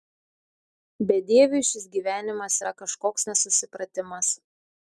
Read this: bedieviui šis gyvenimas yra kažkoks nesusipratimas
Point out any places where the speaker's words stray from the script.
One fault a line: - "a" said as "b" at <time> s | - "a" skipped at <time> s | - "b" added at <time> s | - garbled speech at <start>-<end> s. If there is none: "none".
none